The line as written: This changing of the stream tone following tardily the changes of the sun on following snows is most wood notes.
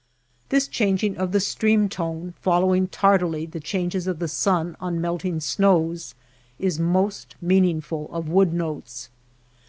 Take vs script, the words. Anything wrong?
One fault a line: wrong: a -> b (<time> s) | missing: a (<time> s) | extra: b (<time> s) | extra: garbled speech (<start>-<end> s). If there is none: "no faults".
wrong: following -> melting (5.0 s)
extra: meaningful of (7.4 s)